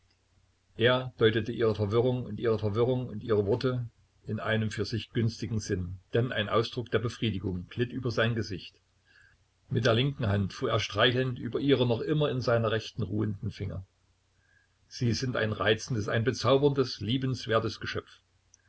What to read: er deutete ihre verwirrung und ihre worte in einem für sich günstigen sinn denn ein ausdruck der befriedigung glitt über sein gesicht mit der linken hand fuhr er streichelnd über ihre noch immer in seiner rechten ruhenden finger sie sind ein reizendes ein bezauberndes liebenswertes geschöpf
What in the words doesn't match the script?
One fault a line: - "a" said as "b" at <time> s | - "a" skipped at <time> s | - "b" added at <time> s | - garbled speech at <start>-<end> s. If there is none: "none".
- "verwirrung und ihre" added at 2.6 s